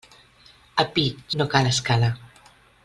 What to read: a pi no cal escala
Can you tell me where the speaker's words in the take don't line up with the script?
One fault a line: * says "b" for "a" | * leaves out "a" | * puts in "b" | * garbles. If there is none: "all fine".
all fine